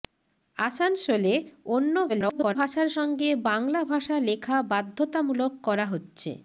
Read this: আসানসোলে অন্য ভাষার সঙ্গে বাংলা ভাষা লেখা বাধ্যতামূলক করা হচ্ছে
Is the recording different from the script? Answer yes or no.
yes